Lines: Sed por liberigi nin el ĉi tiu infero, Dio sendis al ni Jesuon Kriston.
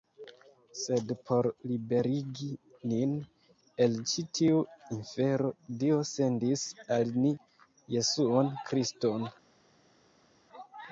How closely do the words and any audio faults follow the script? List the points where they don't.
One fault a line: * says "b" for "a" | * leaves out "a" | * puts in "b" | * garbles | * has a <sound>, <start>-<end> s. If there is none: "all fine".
all fine